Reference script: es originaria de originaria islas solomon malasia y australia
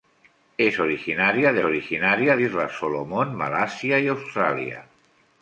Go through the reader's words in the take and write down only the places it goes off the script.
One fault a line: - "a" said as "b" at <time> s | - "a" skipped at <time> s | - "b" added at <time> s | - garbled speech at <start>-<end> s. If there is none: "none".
none